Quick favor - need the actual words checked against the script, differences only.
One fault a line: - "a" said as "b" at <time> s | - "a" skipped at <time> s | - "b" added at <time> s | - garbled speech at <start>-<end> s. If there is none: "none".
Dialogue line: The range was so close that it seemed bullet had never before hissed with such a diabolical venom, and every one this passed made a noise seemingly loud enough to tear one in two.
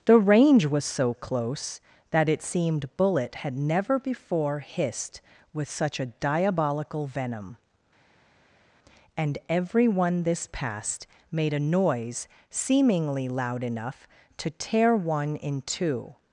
none